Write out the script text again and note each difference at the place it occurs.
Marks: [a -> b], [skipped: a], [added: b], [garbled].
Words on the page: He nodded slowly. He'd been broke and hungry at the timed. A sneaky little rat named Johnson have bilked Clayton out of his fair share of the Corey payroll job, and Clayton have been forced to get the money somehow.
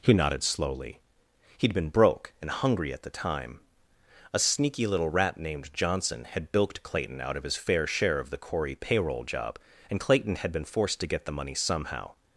He nodded slowly. He'd been broke and hungry at the [timed. -> time] A sneaky little rat named Johnson [have -> had] bilked Clayton out of his fair share of the Corey payroll job, and Clayton [have -> had] been forced to get the money somehow.